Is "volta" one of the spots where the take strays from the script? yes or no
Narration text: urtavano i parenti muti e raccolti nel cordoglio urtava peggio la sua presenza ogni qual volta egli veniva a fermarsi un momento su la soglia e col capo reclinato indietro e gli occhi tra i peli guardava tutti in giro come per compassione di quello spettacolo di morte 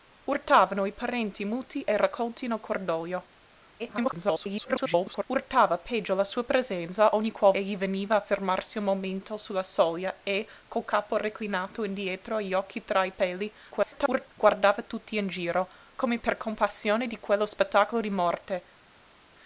yes